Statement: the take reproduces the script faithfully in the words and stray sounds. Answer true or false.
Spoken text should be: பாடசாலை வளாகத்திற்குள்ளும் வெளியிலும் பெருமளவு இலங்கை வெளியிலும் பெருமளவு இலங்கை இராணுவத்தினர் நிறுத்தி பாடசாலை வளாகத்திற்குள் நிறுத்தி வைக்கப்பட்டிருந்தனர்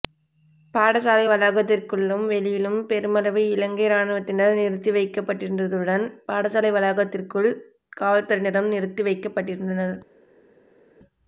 false